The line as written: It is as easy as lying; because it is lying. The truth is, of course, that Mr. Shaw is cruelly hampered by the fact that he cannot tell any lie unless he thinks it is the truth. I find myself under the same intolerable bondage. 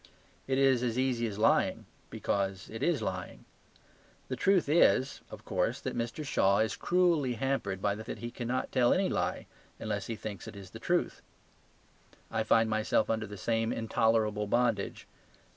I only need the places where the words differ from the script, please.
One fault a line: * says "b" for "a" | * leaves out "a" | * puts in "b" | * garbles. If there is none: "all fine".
* leaves out "fact"